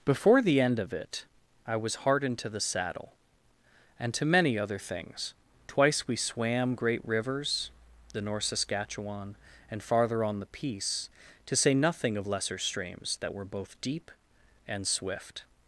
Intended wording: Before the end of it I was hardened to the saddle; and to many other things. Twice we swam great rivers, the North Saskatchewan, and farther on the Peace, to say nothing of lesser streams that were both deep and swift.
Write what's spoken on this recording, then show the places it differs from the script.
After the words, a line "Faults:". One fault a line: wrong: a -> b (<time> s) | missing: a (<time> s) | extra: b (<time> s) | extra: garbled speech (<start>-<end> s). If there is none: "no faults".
Before the end of it I was hardened to the saddle; and to many other things. Twice we swam great rivers, the North Saskatchewan, and farther on the Peace, to say nothing of lesser streams that were both deep and swift.
Faults:
no faults